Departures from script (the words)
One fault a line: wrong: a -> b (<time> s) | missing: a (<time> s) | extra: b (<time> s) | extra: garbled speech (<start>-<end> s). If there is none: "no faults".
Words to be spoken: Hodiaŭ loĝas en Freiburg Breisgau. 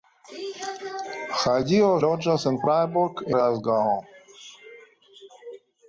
no faults